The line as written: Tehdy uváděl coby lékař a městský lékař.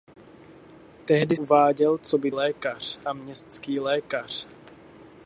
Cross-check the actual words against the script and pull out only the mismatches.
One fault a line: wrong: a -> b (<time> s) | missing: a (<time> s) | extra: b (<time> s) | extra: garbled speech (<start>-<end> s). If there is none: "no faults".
no faults